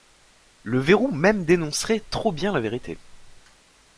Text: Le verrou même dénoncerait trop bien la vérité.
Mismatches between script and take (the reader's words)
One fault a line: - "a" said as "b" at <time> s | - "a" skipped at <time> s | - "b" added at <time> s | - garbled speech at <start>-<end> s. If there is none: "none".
none